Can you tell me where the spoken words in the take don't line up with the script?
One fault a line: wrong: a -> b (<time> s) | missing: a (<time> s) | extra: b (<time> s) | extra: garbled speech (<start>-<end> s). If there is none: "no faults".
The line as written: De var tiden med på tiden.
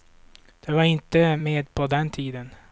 wrong: tiden -> inte (0.8 s)
extra: den (1.9 s)